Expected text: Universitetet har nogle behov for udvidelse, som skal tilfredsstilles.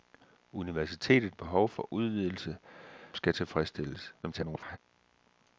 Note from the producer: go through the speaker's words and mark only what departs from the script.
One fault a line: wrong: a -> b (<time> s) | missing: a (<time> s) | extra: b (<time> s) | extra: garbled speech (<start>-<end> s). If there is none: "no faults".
missing: har nogle (1.4 s)
missing: som (2.6 s)
extra: garbled speech (4.2-4.8 s)